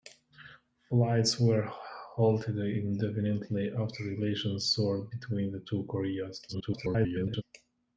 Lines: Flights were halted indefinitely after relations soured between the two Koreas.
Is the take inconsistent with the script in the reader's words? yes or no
yes